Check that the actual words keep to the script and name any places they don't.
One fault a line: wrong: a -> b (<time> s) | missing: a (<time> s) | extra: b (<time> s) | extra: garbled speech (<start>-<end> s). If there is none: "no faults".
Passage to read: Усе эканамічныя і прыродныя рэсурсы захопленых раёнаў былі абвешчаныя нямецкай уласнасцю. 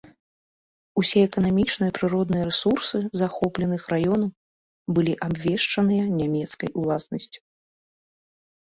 no faults